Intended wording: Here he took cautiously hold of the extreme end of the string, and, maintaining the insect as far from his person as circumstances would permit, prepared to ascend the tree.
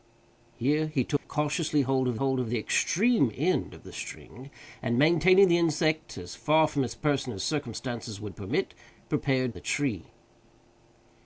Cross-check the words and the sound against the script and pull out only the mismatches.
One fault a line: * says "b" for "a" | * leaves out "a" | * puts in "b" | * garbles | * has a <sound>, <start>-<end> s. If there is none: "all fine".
* has a dropout, 1.2-1.2 s
* puts in "hold of"
* leaves out "to ascend"